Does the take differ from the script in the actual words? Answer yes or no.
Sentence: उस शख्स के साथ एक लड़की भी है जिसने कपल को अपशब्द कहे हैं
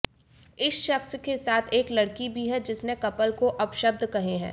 yes